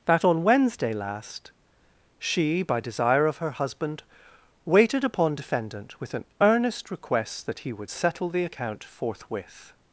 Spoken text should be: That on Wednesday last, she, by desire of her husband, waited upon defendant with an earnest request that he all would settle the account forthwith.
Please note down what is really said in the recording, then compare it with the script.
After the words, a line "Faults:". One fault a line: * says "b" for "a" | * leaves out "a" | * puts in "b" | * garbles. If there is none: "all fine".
That on Wednesday last, she, by desire of her husband, waited upon defendant with an earnest request that he would settle the account forthwith.
Faults:
* leaves out "all"